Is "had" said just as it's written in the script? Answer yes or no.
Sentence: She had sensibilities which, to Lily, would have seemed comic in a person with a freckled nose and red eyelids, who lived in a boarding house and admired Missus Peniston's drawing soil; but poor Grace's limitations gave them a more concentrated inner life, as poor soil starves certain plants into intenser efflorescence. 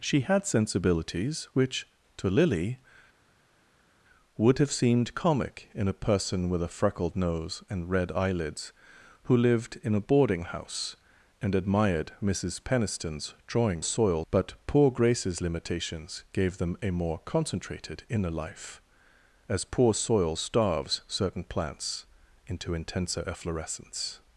yes